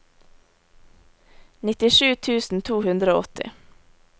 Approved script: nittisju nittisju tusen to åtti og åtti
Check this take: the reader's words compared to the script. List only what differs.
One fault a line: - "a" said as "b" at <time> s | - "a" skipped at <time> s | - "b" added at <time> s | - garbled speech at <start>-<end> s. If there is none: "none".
- "nittisju" skipped at 2.1 s
- "åtti" said as "hundre" at 2.9 s